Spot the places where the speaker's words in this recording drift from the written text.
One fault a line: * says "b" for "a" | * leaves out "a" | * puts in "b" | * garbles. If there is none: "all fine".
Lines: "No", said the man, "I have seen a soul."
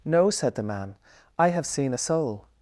all fine